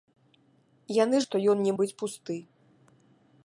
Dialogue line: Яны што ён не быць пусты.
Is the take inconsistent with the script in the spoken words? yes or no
no